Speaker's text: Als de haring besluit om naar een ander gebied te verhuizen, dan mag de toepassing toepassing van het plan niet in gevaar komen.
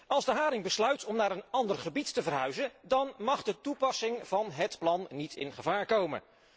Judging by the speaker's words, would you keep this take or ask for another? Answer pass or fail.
fail